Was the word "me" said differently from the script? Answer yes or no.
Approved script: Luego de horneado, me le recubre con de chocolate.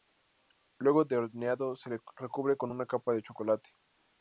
yes